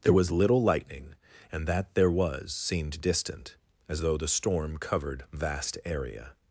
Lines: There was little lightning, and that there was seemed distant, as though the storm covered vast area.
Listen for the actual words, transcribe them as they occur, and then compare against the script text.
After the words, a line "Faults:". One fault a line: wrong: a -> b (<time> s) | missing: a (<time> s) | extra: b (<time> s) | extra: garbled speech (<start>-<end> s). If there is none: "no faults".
There was little lightning, and that there was seemed distant, as though the storm covered vast area.
Faults:
no faults